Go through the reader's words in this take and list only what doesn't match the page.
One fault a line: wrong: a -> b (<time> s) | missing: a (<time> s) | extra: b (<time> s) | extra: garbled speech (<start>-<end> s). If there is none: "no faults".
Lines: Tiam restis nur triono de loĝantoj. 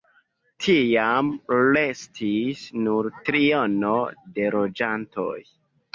no faults